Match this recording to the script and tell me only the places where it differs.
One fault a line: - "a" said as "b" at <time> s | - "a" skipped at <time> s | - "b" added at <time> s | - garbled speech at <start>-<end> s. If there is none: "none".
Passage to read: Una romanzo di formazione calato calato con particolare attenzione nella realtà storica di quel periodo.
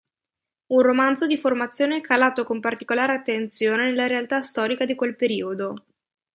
- "Una" said as "Un" at 0.7 s
- "calato" skipped at 2.4 s